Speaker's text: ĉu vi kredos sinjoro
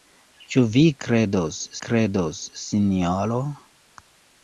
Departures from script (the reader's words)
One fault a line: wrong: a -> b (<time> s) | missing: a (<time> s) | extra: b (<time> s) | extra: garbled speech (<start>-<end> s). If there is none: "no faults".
extra: kredos (1.9 s)